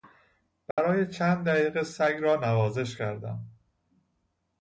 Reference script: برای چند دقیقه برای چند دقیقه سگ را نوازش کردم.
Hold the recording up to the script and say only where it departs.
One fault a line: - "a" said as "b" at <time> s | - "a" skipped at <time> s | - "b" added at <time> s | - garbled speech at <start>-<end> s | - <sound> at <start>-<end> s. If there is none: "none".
- dropout at 0.7-0.8 s
- "برای چند دقیقه" skipped at 1.8 s